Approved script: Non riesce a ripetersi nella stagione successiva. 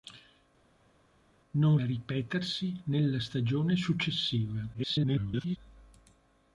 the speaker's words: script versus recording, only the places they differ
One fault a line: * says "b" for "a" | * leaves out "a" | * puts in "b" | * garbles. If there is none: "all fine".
* leaves out "riesce"
* garbles